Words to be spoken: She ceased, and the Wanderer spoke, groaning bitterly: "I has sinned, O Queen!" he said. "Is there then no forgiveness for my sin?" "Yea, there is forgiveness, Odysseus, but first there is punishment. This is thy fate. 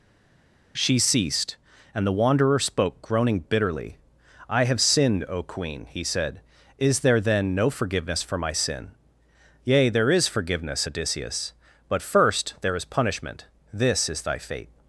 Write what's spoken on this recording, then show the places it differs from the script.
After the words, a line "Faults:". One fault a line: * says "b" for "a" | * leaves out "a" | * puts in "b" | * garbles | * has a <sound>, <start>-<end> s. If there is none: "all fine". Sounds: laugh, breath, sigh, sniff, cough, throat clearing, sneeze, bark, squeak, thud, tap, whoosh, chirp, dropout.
She ceased, and the Wanderer spoke, groaning bitterly: "I have sinned, O Queen!" he said. "Is there then no forgiveness for my sin?" "Yea, there is forgiveness, Odysseus, but first there is punishment. This is thy fate.
Faults:
* says "have" for "has"